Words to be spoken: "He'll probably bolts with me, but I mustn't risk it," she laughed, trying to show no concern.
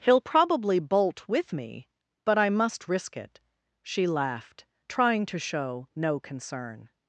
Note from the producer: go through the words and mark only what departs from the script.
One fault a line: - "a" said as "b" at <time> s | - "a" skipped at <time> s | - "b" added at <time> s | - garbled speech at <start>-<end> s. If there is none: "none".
- "bolts" said as "bolt" at 0.8 s
- "mustn't" said as "must" at 2.5 s